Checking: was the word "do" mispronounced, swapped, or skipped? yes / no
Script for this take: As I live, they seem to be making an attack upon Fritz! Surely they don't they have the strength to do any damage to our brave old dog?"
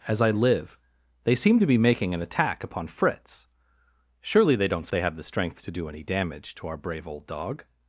no